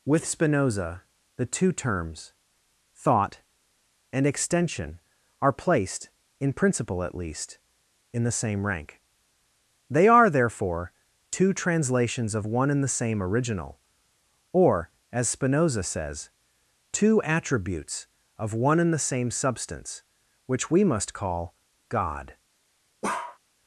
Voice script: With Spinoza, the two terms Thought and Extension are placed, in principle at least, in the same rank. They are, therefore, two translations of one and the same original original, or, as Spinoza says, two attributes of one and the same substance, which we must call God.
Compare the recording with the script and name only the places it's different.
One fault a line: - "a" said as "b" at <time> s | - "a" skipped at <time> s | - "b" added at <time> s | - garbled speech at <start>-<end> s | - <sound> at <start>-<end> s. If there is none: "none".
- "original" skipped at 13.8 s
- bark at 23.0-23.4 s